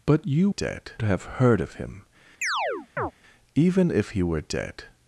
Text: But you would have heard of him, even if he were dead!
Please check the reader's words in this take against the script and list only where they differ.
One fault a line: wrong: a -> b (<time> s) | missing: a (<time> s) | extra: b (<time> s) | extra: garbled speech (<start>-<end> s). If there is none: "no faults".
wrong: would -> dead (0.5 s)